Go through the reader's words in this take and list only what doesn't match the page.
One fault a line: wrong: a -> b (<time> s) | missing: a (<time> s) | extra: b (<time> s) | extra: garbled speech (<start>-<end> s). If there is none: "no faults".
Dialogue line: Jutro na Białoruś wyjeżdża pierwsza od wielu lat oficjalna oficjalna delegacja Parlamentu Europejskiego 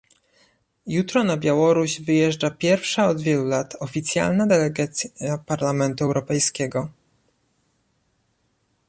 missing: oficjalna (4.5 s)